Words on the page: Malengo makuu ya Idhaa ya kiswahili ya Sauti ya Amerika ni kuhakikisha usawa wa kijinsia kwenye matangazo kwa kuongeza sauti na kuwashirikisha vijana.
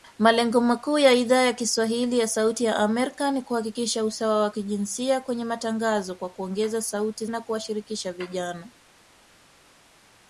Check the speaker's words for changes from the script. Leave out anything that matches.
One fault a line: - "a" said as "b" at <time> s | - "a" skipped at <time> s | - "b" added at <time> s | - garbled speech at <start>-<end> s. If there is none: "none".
none